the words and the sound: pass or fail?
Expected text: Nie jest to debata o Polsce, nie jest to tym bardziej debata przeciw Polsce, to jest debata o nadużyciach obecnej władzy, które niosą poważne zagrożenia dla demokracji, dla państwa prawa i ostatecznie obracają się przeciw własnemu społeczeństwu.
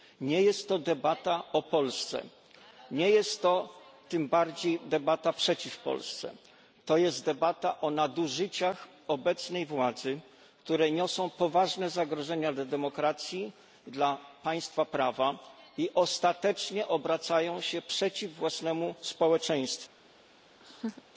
fail